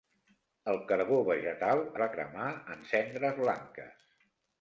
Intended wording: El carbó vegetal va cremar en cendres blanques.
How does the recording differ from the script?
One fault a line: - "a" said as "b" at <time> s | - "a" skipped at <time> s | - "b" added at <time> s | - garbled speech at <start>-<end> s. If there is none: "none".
none